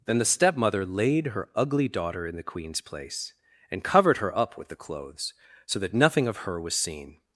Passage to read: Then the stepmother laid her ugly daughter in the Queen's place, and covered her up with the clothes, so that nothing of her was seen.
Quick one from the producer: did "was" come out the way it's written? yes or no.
yes